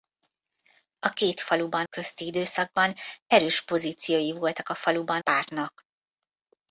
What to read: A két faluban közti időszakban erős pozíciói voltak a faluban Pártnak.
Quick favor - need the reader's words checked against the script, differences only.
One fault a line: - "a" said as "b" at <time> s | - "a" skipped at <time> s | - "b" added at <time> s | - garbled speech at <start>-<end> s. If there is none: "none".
none